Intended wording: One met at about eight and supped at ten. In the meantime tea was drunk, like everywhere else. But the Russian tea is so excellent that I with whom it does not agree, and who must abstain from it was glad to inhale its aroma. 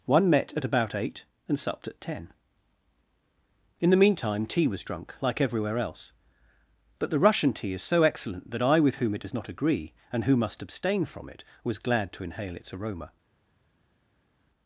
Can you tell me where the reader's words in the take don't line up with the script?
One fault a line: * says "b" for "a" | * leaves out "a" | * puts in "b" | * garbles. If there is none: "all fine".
all fine